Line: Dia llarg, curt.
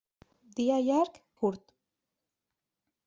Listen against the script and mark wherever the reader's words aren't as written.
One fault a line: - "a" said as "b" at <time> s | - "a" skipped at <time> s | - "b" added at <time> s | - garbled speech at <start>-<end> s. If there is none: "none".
none